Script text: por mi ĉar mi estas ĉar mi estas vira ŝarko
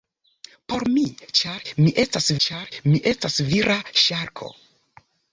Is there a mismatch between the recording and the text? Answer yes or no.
no